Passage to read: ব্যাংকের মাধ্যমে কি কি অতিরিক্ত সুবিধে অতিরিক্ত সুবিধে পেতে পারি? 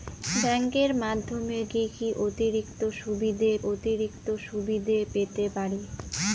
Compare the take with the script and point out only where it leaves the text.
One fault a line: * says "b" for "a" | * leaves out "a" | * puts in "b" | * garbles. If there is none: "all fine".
all fine